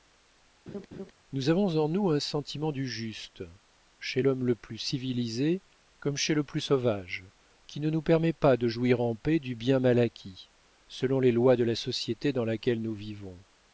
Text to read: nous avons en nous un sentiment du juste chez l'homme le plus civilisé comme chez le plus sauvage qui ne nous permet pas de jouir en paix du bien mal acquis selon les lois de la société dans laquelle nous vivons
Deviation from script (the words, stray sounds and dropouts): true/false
true